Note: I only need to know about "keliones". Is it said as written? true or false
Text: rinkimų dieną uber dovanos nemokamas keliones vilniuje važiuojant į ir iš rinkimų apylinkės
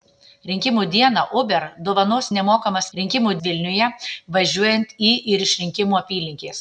false